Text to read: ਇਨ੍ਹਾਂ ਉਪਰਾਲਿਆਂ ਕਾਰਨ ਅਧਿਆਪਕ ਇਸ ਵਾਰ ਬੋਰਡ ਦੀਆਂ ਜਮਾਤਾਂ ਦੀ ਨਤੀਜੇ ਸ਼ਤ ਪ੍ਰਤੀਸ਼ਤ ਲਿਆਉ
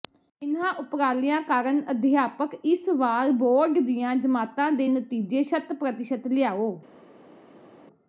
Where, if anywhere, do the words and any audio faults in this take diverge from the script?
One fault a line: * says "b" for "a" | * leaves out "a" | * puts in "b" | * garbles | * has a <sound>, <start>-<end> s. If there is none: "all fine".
* says "ਦੇ" for "ਦੀ"